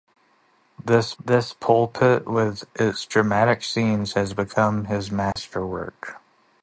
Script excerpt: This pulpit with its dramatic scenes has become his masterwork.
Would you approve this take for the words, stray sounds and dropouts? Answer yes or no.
no